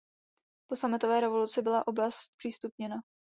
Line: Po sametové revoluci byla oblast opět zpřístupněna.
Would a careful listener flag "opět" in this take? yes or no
yes